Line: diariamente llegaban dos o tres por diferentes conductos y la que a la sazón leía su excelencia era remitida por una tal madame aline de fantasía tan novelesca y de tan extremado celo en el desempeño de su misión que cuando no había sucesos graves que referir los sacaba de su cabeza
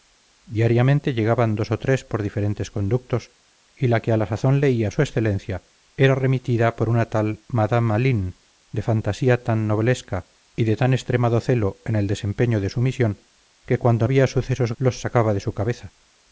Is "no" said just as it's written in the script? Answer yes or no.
no